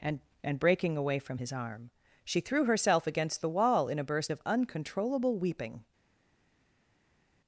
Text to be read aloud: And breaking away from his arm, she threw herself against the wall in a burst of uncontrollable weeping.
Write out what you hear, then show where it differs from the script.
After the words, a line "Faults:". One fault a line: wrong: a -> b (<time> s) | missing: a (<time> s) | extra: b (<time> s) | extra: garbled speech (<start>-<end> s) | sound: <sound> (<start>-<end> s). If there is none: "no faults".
And and breaking away from his arm, she threw herself against the wall in a burst of uncontrollable weeping.
Faults:
extra: and (0.4 s)